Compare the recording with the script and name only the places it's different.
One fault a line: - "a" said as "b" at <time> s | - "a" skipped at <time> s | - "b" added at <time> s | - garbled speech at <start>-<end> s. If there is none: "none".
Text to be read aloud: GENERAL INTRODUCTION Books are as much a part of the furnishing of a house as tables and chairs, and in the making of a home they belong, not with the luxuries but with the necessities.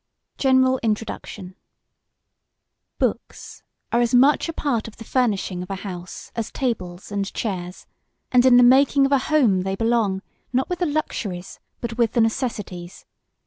none